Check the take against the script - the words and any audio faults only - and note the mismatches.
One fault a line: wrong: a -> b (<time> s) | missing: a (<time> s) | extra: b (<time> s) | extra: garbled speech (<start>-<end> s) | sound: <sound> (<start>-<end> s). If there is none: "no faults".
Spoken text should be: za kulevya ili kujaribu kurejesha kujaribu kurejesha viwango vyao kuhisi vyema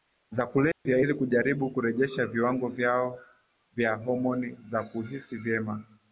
sound: dropout (0.7-0.9 s)
wrong: kujaribu kurejesha viwango vyao -> viwango vyao vya homoni za (2.3 s)